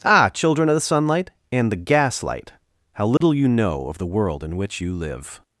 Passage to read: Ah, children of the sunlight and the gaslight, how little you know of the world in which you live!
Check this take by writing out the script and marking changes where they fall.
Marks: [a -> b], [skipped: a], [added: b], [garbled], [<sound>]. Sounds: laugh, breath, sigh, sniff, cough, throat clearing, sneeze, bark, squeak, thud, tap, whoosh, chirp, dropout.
Ah, children of the sunlight and the gaslight, how little [dropout] you know of the world in which you live!